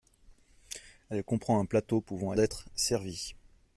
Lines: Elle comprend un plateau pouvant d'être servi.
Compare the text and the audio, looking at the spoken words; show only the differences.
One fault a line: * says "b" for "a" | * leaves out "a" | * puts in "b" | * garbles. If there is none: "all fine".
all fine